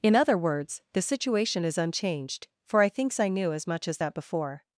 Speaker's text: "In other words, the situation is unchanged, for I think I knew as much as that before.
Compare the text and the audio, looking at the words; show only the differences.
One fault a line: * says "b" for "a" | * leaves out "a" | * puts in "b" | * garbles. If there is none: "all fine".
* says "thinks" for "think"